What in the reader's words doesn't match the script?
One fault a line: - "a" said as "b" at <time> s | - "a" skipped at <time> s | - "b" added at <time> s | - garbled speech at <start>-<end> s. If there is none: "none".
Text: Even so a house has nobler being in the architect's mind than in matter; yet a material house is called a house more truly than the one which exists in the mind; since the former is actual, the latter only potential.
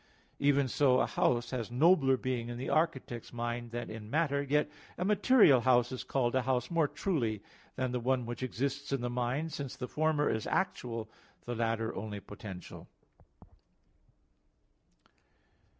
none